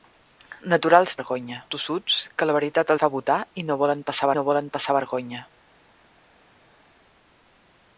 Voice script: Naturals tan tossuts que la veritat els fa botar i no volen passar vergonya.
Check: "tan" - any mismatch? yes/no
yes